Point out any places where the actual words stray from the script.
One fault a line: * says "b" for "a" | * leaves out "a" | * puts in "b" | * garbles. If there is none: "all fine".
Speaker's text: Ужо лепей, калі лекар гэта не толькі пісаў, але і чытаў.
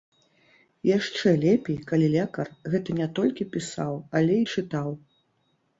* says "Яшчэ" for "Ужо"